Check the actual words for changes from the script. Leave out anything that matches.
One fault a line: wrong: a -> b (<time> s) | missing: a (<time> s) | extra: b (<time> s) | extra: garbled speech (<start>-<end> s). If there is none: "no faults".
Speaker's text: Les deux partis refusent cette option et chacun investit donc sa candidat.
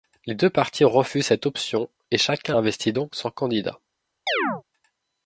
wrong: sa -> son (3.1 s)